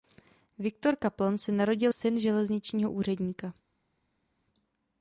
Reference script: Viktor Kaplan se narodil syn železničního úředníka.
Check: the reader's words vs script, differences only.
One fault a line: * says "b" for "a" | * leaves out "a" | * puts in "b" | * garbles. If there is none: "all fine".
all fine